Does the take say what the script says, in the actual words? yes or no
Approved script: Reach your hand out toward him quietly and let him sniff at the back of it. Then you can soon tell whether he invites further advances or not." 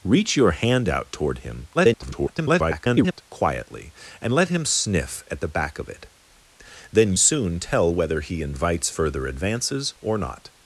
no